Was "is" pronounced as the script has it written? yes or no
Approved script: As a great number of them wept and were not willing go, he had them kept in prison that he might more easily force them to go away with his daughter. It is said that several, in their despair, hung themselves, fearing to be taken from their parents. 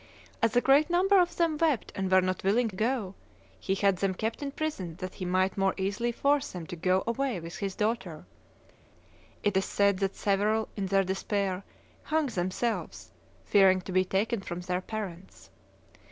yes